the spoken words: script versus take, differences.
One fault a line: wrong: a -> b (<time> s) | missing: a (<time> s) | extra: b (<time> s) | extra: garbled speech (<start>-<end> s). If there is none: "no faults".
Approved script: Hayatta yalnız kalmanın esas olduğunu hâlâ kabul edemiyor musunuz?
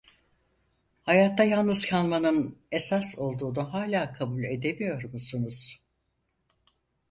no faults